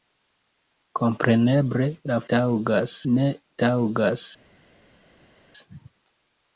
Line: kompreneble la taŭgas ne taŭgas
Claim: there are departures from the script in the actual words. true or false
false